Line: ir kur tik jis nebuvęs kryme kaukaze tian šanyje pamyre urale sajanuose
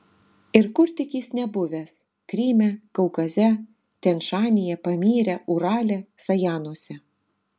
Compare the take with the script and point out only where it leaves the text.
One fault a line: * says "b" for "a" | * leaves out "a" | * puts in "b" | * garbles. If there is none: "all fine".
all fine